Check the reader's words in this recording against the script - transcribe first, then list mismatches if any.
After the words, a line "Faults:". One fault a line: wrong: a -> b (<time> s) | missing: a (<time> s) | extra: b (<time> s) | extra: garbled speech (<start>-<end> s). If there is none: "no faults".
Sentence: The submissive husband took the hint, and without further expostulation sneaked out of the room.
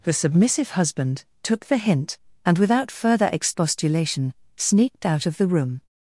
The submissive husband took the hint, and without further expostulation sneaked out of the room.
Faults:
no faults